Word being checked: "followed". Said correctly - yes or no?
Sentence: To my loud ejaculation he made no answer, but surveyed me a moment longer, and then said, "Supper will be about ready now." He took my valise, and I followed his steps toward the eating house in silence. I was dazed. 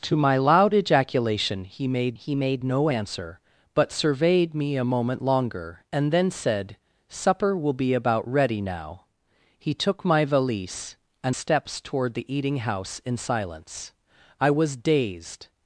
no